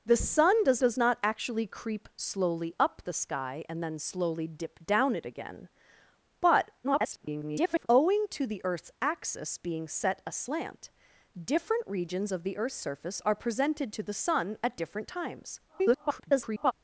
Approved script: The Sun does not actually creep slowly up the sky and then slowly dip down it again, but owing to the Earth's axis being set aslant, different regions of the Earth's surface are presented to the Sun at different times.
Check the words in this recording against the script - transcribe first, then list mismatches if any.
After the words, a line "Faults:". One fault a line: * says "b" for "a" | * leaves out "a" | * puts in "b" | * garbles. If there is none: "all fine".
The Sun does does not actually creep slowly up the sky and then slowly dip down it again, but [garbled] owing to the Earth's axis being set aslant, different regions of the Earth's surface are presented to the Sun at different times. [garbled]
Faults:
* puts in "does"
* garbles
* garbles